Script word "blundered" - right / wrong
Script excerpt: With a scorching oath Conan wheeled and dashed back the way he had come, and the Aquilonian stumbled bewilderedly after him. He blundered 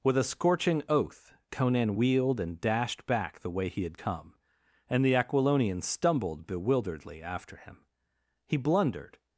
right